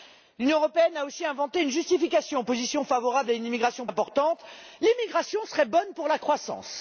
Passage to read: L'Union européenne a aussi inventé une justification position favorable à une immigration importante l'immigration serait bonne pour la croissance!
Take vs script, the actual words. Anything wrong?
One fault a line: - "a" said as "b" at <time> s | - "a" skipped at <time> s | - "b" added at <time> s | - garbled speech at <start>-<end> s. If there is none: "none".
none